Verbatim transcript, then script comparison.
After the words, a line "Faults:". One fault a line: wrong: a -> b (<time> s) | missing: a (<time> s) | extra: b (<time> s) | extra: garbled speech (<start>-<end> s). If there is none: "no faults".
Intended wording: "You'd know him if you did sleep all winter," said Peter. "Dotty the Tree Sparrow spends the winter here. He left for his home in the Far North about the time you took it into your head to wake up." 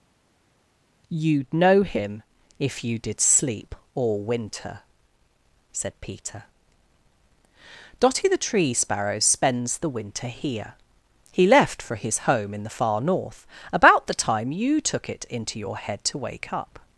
"You'd know him if you did sleep all winter," said Peter. "Dotty the Tree Sparrow spends the winter here. He left for his home in the Far North about the time you took it into your head to wake up."
Faults:
no faults